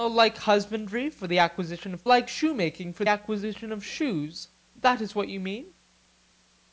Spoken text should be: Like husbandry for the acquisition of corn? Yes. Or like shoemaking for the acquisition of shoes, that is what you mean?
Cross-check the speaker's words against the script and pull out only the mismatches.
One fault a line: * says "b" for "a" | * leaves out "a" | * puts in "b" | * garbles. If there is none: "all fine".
* leaves out "corn Yes Or"
* leaves out "the"